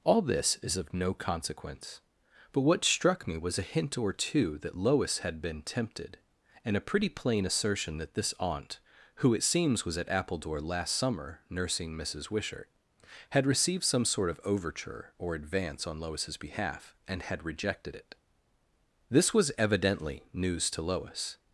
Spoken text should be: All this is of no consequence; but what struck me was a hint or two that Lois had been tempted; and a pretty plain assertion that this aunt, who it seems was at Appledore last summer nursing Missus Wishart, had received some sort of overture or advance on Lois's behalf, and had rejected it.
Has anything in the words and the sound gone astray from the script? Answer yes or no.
yes